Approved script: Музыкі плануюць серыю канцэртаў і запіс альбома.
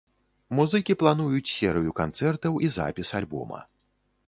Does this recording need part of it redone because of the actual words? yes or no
no